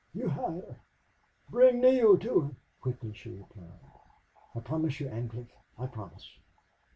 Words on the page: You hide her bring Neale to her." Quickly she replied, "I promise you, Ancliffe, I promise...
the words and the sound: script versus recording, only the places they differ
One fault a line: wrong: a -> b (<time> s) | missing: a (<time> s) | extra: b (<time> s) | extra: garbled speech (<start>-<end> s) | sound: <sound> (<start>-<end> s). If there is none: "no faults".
no faults